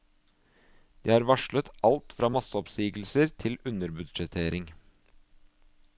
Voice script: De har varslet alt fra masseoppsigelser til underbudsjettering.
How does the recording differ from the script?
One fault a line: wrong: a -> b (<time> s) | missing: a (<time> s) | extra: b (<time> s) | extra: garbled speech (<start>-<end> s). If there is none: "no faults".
no faults